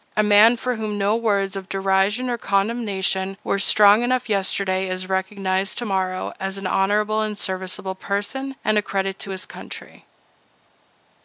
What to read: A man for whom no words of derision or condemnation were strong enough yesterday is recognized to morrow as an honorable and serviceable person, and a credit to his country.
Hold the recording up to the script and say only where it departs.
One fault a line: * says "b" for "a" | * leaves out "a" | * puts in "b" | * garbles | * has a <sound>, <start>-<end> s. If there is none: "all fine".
all fine